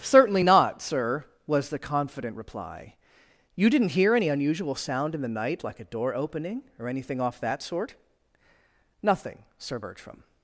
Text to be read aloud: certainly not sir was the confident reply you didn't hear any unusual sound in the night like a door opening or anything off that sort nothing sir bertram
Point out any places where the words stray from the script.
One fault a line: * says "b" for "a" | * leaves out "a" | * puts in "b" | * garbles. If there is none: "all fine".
all fine